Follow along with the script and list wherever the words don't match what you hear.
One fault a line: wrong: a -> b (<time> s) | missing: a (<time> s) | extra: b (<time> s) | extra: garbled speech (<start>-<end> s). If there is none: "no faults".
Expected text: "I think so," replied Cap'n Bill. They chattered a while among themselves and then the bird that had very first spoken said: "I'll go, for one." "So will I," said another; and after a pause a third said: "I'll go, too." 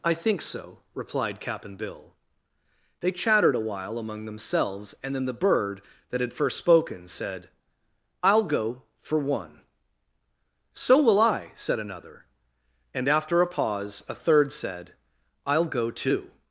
missing: very (6.3 s)